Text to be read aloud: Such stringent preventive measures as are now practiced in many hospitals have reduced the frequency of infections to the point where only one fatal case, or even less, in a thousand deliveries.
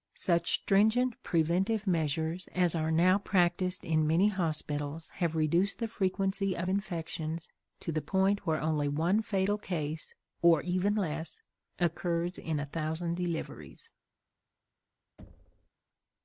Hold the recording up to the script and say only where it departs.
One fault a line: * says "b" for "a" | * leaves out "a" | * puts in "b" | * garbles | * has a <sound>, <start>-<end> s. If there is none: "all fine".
* puts in "occurs"
* has a thud, 15.2-15.7 s